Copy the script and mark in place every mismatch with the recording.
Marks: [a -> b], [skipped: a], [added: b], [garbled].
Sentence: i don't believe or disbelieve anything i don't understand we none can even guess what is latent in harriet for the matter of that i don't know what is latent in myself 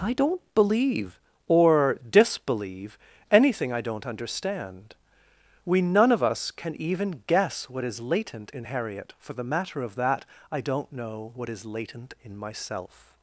i don't believe or disbelieve anything i don't understand we none [added: of us] can even guess what is latent in harriet for the matter of that i don't know what is latent in myself